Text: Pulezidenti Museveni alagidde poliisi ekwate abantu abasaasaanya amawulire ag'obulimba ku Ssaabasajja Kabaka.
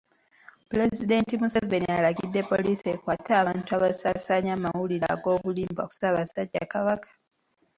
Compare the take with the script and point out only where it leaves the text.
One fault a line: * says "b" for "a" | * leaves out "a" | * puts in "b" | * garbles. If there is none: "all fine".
all fine